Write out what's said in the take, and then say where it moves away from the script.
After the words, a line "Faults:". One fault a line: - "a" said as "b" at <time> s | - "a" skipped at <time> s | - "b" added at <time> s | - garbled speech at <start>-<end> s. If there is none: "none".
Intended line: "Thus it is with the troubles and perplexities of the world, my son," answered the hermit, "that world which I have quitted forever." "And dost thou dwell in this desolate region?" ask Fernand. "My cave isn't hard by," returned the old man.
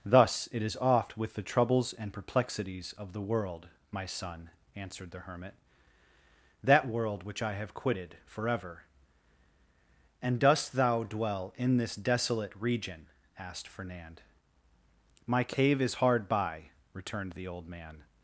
"Thus it is oft with the troubles and perplexities of the world, my son," answered the hermit, "that world which I have quitted forever." "And dost thou dwell in this desolate region?" asked Fernand. "My cave is hard by," returned the old man.
Faults:
- "oft" added at 0.8 s
- "ask" said as "asked" at 13.4 s
- "isn't" said as "is" at 15.8 s